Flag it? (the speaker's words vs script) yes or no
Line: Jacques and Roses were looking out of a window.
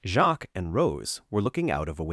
yes